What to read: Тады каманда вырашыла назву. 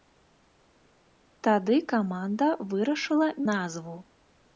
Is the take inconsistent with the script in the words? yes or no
no